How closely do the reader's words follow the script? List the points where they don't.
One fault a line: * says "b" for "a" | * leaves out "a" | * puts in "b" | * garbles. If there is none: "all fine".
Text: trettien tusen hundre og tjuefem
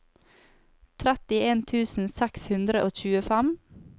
* puts in "seks"